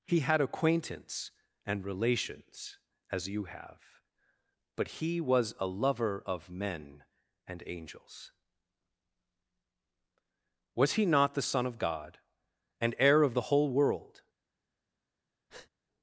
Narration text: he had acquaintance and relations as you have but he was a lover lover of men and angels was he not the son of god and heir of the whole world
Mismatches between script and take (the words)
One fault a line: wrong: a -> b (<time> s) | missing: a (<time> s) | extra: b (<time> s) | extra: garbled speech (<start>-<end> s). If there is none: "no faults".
missing: lover (6.2 s)